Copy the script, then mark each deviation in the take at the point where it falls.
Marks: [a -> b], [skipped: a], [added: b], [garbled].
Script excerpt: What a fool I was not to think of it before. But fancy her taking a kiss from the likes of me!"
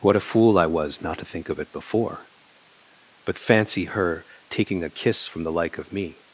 What a fool I was not to think of it before. But fancy her taking a kiss from the [likes -> like] of me!"